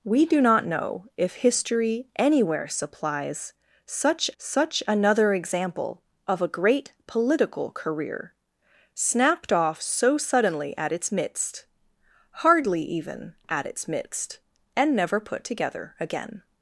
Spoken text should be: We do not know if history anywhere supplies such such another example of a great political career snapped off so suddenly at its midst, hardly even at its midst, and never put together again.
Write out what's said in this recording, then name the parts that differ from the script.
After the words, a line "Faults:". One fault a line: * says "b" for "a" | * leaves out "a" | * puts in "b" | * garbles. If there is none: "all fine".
We do not know if history anywhere supplies such such another example of a great political career snapped off so suddenly at its midst, hardly even at its midst, and never put together again.
Faults:
all fine